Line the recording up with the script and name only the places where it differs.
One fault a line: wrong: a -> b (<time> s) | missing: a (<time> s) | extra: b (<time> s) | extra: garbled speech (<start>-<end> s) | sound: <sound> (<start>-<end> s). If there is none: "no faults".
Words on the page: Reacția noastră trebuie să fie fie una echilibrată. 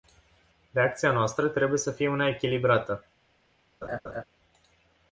missing: fie (2.1 s)
sound: laugh (3.8-4.2 s)